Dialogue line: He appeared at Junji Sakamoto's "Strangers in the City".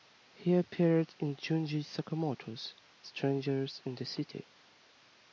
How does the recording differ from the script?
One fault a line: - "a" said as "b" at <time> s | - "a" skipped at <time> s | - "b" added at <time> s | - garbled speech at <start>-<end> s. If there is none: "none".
- "at" said as "in" at 1.2 s